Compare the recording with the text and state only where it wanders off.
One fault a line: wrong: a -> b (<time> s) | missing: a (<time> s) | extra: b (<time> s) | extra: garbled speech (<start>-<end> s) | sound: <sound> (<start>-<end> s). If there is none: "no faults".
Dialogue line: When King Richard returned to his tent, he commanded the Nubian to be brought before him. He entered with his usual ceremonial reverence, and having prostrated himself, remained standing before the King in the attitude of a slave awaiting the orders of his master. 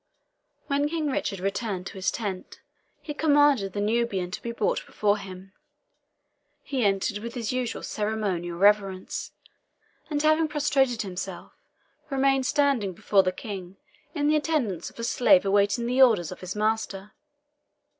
no faults